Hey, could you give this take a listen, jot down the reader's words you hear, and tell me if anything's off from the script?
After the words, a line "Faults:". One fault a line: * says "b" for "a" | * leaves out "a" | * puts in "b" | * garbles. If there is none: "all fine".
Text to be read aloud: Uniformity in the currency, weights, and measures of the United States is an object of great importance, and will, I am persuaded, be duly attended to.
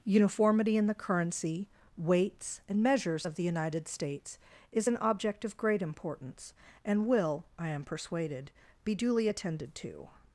Uniformity in the currency, weights, and measures of the United States is an object of great importance, and will, I am persuaded, be duly attended to.
Faults:
all fine